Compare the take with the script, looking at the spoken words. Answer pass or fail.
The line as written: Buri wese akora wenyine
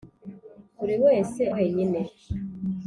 fail